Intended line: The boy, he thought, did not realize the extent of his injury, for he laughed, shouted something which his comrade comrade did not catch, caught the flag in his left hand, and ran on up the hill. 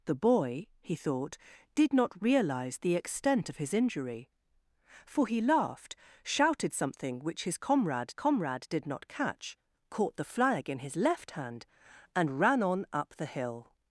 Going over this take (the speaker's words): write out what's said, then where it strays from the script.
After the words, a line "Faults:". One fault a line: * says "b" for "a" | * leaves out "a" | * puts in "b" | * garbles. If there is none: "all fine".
The boy, he thought, did not realize the extent of his injury, for he laughed, shouted something which his comrade comrade did not catch, caught the flag in his left hand, and ran on up the hill.
Faults:
all fine